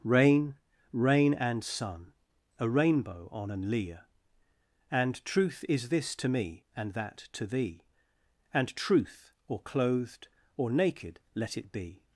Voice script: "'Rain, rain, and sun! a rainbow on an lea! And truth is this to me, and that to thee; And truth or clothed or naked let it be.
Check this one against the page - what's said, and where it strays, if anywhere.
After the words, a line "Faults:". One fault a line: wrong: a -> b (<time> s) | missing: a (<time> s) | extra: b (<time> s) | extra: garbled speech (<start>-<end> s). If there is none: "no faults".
"'Rain, rain, and sun! a rainbow on an lea! And truth is this to me, and that to thee; And truth or clothed or naked let it be.
Faults:
no faults